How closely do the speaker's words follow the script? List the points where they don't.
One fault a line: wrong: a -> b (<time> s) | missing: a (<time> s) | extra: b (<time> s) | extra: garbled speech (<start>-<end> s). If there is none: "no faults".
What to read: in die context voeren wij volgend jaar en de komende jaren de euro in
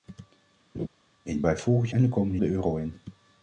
missing: die context voeren (1.4 s)
missing: jaar (1.9 s)
missing: jaren (2.4 s)